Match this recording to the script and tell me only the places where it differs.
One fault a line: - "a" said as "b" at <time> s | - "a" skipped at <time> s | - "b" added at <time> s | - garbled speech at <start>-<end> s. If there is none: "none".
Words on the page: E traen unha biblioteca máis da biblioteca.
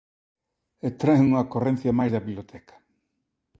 - "biblioteca" said as "ocorrencia" at 1.5 s